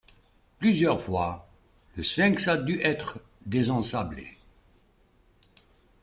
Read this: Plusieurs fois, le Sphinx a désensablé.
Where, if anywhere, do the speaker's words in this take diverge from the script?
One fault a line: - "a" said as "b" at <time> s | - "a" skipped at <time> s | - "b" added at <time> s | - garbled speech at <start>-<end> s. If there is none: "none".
- "dû être" added at 2.6 s